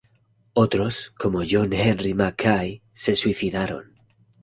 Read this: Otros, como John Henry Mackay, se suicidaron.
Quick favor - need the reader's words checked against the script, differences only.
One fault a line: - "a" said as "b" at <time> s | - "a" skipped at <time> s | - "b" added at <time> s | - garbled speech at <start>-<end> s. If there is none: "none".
none